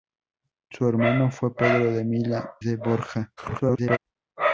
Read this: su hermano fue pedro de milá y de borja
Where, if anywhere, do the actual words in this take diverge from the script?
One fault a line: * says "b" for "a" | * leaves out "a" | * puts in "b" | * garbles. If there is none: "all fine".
* leaves out "y"
* garbles